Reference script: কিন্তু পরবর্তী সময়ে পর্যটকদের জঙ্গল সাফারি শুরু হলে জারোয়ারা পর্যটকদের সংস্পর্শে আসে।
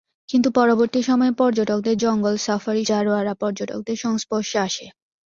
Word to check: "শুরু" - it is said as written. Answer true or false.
false